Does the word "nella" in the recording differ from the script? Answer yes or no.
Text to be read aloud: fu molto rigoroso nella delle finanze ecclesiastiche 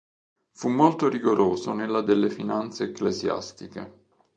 no